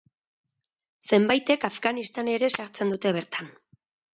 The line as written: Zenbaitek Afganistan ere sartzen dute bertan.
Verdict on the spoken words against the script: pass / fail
pass